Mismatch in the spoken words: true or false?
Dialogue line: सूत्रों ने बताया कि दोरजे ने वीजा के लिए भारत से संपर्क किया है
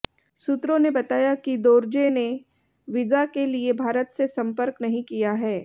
true